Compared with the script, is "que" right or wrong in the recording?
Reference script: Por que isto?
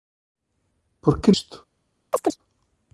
right